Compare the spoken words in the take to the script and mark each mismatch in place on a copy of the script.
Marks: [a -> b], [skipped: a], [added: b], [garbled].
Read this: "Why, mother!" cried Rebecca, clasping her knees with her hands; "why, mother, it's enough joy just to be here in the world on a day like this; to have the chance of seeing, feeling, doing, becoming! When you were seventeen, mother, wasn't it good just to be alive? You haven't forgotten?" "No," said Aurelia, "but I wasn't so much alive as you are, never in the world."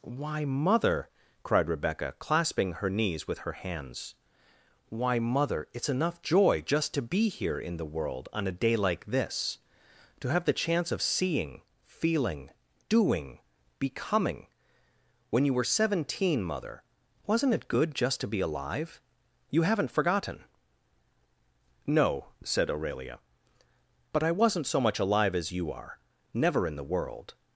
"Why, mother!" cried Rebecca, clasping her knees with her hands; "why, mother, it's enough joy just to be here in the world on a day like this; to have the chance of seeing, feeling, doing, becoming! When you were seventeen, mother, wasn't it good just to be alive? You haven't forgotten?" "No," said Aurelia, "but I wasn't so much alive as you are, never in the world."